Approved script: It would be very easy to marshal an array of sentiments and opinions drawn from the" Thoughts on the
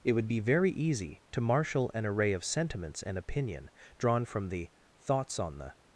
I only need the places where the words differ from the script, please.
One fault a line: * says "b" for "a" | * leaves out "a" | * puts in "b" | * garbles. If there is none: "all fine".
* says "opinion" for "opinions"